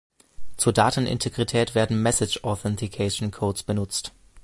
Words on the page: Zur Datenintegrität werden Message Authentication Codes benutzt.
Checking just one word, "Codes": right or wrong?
right